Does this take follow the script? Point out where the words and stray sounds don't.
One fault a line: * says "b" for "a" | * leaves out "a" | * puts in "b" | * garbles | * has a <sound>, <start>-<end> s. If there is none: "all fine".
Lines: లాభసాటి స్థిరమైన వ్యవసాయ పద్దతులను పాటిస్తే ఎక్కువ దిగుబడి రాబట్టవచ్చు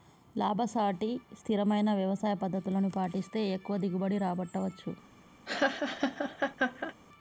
* has a laugh, 5.5-6.9 s